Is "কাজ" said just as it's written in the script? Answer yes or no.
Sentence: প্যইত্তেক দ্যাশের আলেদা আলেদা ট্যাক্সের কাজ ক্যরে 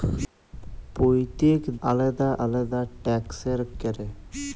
no